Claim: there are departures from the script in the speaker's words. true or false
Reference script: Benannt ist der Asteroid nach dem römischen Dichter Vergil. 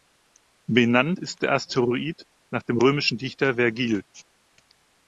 false